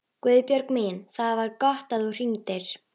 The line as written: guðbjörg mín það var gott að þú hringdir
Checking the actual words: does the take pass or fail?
pass